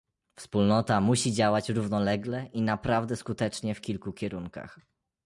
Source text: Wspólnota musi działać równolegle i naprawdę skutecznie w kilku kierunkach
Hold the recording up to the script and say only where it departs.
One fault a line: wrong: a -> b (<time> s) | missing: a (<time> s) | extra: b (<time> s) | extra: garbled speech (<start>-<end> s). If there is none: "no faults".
no faults